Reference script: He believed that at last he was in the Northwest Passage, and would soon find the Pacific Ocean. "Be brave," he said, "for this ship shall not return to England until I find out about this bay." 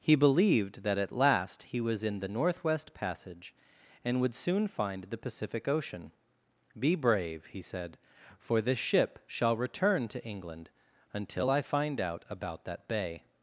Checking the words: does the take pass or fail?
fail